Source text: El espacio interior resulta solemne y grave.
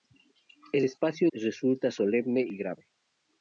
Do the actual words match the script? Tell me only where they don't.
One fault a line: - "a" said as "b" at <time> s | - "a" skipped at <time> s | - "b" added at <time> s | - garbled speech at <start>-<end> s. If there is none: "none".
- "interior" skipped at 1.3 s